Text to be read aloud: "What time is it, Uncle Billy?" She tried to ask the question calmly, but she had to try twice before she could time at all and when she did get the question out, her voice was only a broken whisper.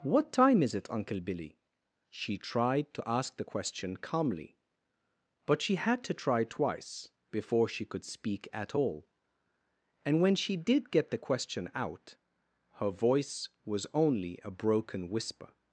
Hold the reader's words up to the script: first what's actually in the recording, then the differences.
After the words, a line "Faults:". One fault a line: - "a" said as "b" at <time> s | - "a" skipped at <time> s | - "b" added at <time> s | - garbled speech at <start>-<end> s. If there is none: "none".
"What time is it, Uncle Billy?" She tried to ask the question calmly, but she had to try twice before she could speak at all and when she did get the question out, her voice was only a broken whisper.
Faults:
- "time" said as "speak" at 8.0 s